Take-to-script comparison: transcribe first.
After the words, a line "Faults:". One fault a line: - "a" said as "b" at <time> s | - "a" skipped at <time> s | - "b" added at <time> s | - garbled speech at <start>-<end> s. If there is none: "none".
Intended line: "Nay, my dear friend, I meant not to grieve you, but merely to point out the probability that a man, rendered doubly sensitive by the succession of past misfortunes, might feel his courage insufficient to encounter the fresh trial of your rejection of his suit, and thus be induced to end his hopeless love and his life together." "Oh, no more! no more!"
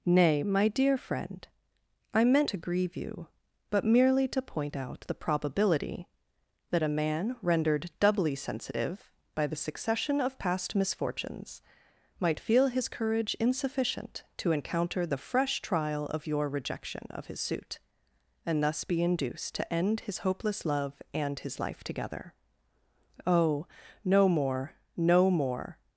"Nay, my dear friend, I meant to grieve you, but merely to point out the probability that a man, rendered doubly sensitive by the succession of past misfortunes, might feel his courage insufficient to encounter the fresh trial of your rejection of his suit, and thus be induced to end his hopeless love and his life together." "Oh, no more! no more!"
Faults:
- "not" skipped at 2.5 s